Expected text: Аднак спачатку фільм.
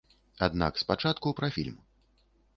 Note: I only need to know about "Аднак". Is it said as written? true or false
true